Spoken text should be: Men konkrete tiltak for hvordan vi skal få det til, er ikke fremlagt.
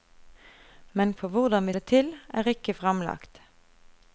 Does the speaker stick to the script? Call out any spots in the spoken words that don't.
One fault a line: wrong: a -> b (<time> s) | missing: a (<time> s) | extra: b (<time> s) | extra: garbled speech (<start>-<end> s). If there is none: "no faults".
missing: konkrete tiltak (1.1 s)
missing: skal få (1.7 s)